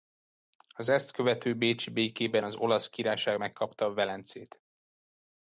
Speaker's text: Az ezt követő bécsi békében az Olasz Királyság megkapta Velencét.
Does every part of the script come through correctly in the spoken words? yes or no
yes